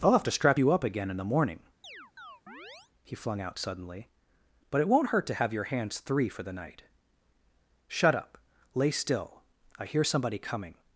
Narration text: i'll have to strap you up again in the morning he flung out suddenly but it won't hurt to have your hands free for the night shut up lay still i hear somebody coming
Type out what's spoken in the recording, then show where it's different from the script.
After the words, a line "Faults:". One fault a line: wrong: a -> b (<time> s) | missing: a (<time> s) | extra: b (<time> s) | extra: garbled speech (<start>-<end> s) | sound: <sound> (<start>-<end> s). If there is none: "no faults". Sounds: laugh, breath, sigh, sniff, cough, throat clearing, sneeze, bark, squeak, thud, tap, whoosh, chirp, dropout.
i'll have to strap you up again in the morning he flung out suddenly but it won't hurt to have your hands three for the night shut up lay still i hear somebody coming
Faults:
sound: chirp (1.8-2.9 s)
wrong: free -> three (6.0 s)